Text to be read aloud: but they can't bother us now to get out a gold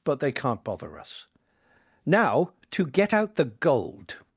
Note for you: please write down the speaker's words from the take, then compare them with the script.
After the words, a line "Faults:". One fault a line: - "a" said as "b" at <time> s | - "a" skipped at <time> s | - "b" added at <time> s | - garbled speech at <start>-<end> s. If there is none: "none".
but they can't bother us now to get out the gold
Faults:
- "a" said as "the" at 3.3 s